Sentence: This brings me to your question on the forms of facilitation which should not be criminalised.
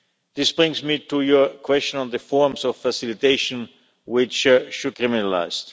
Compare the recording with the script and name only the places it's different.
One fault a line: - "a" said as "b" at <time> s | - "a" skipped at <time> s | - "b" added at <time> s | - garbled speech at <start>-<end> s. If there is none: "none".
- "not be" skipped at 5.0 s